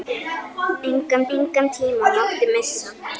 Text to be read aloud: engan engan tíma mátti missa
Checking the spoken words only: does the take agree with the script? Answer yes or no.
yes